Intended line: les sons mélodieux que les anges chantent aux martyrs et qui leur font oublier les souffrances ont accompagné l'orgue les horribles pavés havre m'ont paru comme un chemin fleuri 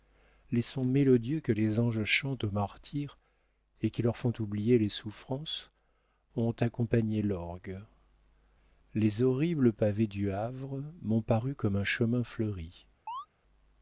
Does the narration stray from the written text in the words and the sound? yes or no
yes